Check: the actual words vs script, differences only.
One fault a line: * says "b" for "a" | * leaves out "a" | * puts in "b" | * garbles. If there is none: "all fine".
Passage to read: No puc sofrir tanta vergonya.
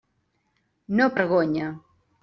* leaves out "puc sofrir tanta"